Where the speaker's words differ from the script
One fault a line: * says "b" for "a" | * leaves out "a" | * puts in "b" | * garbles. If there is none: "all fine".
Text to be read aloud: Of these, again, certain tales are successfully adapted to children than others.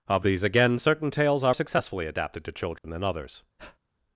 all fine